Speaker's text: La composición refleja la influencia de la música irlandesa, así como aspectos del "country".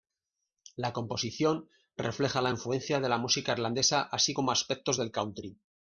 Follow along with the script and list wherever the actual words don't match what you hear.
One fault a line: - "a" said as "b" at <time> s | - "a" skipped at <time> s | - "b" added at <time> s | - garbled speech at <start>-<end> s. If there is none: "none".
none